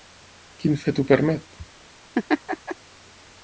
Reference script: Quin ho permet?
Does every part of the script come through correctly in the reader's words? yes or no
no